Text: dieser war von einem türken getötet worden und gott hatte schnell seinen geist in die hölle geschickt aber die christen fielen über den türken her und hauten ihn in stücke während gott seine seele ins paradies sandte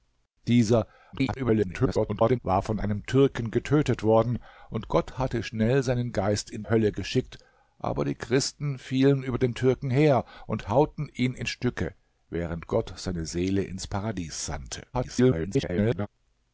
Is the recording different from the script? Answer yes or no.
yes